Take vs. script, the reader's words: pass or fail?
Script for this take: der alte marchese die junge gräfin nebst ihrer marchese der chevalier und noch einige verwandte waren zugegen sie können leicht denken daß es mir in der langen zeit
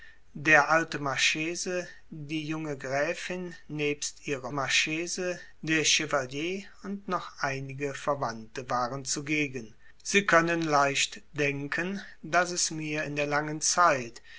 pass